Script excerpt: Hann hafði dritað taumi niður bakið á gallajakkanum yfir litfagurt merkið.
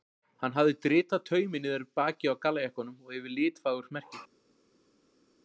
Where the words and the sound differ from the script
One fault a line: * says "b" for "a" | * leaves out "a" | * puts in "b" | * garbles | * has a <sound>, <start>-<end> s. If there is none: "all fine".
* puts in "og"